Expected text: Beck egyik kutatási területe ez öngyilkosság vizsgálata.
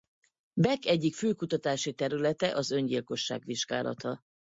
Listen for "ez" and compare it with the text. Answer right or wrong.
wrong